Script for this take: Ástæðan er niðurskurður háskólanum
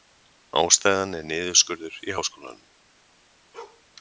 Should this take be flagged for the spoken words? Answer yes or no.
yes